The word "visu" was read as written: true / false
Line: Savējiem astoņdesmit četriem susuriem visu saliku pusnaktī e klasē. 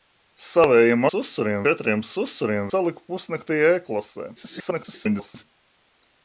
false